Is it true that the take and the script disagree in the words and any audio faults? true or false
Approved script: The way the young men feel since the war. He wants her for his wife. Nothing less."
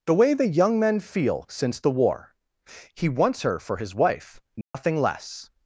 true